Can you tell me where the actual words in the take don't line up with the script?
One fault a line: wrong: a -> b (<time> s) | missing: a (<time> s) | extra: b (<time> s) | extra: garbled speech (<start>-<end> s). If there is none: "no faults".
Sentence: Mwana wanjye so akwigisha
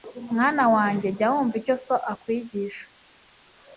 extra: jya wumva icyo (1.2 s)